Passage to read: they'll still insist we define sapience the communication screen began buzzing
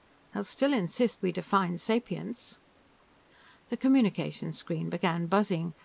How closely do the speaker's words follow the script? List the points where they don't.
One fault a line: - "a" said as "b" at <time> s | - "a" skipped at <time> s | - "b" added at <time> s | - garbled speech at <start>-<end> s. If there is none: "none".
none